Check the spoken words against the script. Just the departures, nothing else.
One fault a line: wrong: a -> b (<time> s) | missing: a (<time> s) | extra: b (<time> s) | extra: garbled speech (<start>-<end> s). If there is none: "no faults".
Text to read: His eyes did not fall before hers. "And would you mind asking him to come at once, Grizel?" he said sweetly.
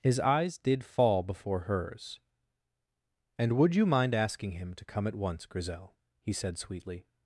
missing: not (0.8 s)